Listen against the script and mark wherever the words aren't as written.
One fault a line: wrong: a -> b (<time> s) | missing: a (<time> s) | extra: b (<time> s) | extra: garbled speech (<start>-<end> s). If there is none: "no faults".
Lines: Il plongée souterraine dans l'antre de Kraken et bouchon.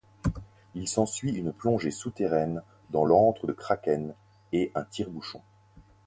extra: s'ensuit une (0.9 s)
extra: un tire (4.7 s)